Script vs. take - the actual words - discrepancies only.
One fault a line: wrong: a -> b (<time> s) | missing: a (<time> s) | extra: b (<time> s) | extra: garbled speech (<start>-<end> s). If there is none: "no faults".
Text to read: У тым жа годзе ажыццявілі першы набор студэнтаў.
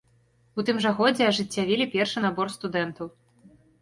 no faults